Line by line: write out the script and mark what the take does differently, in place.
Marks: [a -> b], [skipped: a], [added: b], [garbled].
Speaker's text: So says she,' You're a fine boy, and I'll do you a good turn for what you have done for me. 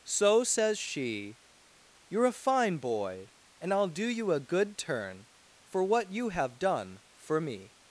So says she,' You're a fine boy, and I'll do you a good turn for what you have done for me.